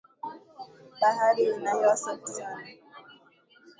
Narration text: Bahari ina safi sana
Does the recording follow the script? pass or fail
fail